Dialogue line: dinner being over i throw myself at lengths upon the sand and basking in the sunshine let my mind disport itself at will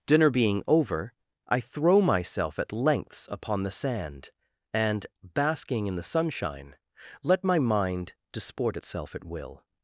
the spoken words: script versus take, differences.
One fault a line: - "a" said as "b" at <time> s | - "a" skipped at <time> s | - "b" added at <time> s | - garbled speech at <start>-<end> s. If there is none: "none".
none